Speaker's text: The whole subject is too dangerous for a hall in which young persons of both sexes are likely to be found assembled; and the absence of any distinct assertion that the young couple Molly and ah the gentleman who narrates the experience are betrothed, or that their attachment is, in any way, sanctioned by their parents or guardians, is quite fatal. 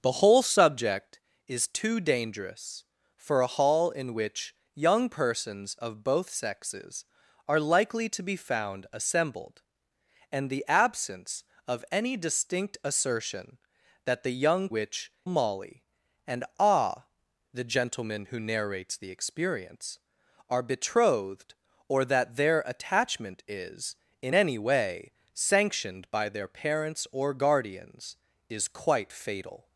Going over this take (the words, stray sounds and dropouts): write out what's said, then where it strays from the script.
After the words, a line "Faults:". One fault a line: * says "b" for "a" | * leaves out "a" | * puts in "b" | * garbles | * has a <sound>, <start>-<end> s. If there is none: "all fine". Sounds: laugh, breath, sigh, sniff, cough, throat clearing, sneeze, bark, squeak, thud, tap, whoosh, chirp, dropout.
The whole subject is too dangerous for a hall in which young persons of both sexes are likely to be found assembled; and the absence of any distinct assertion that the young which Molly and ah the gentleman who narrates the experience are betrothed, or that their attachment is, in any way, sanctioned by their parents or guardians, is quite fatal.
Faults:
* says "which" for "couple"